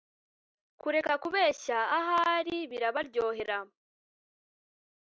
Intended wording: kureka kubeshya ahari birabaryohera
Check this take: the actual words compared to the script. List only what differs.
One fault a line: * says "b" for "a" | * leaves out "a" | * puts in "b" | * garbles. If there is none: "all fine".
all fine